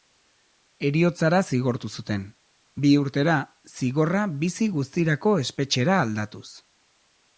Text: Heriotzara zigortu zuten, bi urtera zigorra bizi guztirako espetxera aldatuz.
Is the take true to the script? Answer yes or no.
yes